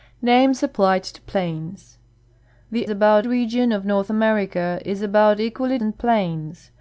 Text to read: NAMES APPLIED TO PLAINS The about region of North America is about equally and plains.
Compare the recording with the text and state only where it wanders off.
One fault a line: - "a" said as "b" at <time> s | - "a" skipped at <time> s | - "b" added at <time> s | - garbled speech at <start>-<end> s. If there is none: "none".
none